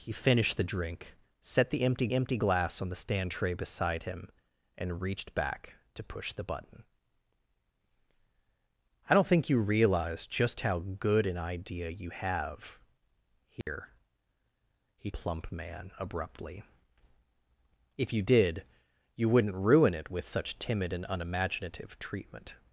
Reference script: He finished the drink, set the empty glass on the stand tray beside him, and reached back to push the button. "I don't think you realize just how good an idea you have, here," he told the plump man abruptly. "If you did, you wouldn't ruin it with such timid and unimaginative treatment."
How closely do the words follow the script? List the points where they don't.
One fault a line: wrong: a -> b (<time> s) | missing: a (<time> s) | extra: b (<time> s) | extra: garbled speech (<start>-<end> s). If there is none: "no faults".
extra: empty (2.1 s)
missing: told the (15.1 s)